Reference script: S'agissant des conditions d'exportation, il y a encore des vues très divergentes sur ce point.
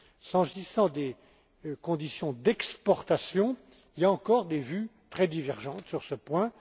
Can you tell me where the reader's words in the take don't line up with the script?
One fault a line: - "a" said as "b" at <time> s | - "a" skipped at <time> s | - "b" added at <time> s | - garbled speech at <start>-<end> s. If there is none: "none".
none